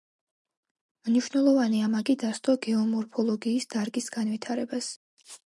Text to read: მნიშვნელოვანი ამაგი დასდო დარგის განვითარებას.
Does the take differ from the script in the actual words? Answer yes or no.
yes